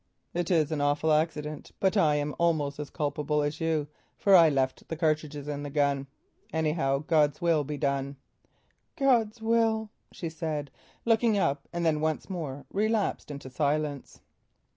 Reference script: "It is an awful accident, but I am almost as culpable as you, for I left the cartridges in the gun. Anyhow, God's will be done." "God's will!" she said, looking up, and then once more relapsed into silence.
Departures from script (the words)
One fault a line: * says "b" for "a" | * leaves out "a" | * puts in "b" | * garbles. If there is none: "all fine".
all fine